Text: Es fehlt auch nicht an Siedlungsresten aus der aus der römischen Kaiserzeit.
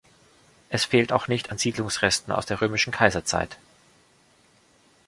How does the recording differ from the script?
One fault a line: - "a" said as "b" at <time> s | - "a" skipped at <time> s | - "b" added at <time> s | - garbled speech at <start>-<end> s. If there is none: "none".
- "aus der" skipped at 2.6 s